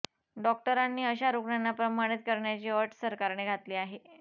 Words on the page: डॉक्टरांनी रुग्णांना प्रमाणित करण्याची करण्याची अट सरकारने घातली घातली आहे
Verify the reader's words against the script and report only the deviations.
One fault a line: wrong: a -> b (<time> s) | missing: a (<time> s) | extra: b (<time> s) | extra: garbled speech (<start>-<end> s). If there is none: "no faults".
extra: अशा (1.0 s)
missing: करण्याची (2.7 s)
missing: घातली (3.8 s)